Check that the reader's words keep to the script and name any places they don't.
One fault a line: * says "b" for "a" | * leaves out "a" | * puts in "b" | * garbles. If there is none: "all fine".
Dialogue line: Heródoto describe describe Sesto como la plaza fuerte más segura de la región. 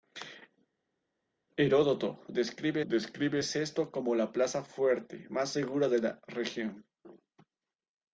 all fine